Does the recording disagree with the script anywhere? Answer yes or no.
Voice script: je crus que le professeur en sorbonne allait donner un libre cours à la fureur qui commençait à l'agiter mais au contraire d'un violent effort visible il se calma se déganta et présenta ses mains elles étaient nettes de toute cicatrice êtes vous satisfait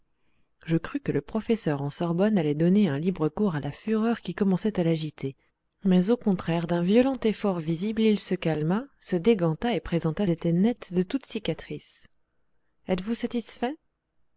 yes